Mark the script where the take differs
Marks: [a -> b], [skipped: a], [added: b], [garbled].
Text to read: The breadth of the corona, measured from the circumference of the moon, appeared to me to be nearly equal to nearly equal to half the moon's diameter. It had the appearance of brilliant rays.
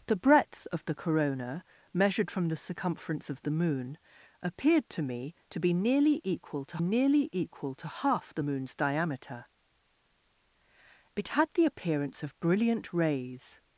The breadth of the corona, measured from the circumference of the moon, appeared to me to be nearly equal to nearly equal to half the moon's diameter. It had the appearance of brilliant rays.